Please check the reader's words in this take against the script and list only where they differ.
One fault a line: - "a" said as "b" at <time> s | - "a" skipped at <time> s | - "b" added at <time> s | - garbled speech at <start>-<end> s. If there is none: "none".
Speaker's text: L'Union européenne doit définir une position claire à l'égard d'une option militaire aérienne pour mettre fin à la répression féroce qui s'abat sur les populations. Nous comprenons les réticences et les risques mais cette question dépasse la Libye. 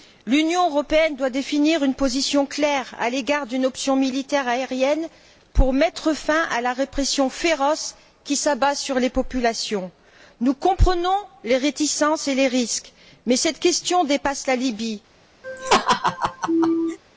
none